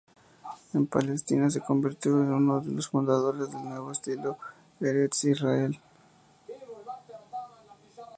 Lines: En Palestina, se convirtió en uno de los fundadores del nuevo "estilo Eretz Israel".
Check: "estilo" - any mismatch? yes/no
no